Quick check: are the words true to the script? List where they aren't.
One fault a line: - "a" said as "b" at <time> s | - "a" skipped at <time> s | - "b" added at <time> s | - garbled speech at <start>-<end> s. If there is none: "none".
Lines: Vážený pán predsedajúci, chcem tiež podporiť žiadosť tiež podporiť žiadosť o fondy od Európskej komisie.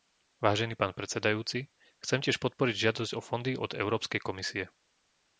- "tiež podporiť žiadosť" skipped at 3.1 s